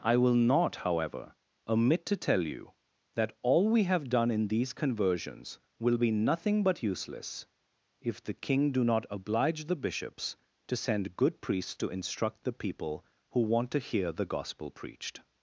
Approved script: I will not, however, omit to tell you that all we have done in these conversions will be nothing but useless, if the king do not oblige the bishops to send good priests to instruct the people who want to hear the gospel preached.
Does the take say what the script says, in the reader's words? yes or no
yes